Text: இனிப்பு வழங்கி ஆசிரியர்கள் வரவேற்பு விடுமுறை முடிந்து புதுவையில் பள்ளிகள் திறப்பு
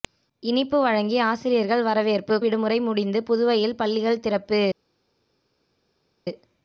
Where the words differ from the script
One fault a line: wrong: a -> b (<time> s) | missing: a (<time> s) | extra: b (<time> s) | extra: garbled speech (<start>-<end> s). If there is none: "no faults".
no faults